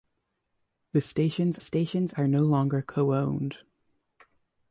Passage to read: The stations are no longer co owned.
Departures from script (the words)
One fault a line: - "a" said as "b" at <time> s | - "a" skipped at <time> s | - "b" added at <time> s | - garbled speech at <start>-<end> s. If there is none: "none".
- "stations" added at 1.6 s